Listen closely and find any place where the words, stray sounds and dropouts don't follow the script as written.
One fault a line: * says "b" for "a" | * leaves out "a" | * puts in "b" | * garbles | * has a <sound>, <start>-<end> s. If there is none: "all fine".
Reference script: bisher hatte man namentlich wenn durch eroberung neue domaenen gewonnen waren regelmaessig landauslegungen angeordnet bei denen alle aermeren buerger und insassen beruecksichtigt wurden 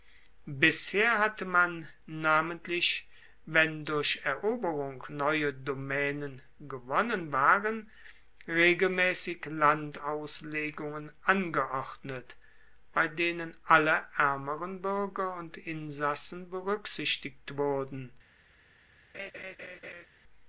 * has a laugh, 19.1-20.1 s